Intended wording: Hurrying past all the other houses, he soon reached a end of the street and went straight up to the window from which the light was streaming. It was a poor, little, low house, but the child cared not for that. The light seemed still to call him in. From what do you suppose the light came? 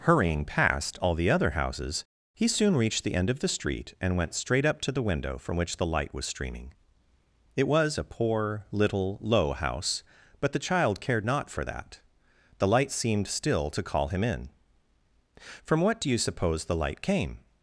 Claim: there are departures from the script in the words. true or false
true